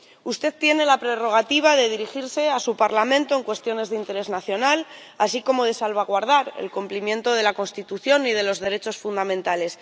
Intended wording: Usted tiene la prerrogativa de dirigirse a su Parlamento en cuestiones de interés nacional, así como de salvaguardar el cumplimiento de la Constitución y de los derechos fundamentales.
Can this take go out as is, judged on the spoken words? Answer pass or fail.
pass